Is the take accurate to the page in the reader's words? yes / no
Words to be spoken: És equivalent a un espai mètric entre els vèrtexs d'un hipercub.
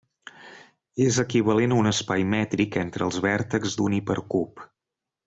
yes